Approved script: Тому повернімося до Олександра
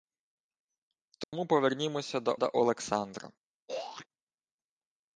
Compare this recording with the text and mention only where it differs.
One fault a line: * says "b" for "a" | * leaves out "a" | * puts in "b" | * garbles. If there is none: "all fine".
* puts in "до"